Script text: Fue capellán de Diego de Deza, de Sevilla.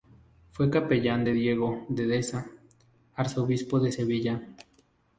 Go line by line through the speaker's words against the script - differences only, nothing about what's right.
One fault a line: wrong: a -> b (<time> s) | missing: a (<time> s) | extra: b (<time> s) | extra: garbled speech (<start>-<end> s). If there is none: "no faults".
extra: arzobispo (3.2 s)